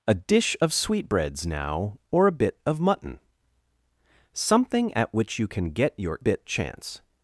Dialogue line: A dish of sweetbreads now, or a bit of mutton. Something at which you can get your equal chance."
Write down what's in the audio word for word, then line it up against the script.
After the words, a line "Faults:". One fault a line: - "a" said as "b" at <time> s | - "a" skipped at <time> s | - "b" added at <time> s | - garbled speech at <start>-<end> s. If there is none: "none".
A dish of sweetbreads now, or a bit of mutton. Something at which you can get your bit chance."
Faults:
- "equal" said as "bit" at 6.2 s